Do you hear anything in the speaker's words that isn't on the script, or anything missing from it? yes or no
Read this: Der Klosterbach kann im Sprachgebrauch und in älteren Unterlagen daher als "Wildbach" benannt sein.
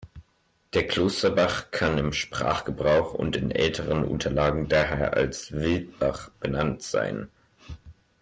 no